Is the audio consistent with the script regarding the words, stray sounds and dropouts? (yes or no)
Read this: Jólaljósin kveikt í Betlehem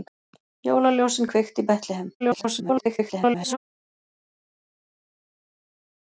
no